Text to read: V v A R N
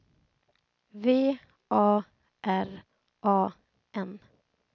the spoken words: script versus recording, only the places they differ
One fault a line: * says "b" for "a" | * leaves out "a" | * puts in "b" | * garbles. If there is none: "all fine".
* leaves out "v"
* puts in "A"